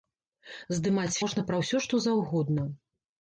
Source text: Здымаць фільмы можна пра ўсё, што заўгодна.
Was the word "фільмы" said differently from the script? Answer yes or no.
yes